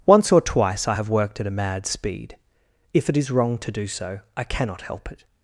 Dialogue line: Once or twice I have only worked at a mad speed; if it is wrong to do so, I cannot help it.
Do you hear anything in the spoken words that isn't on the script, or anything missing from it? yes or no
yes